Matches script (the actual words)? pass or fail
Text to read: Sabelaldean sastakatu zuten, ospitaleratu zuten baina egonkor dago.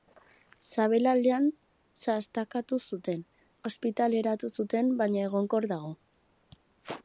pass